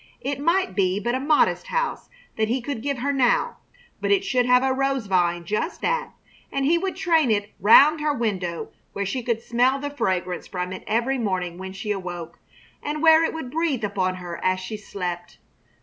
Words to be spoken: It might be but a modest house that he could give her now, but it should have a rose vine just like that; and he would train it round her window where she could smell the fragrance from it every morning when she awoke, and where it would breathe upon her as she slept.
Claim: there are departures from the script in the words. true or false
true